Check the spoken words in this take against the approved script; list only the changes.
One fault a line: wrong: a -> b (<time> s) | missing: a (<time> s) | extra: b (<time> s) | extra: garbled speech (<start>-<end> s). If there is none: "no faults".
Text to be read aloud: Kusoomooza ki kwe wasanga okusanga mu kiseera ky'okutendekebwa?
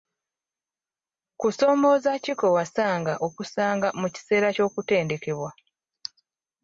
no faults